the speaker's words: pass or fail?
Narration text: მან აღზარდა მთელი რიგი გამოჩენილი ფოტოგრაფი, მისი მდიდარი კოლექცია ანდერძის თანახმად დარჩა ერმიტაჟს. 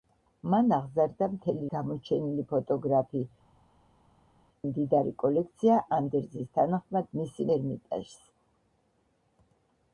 fail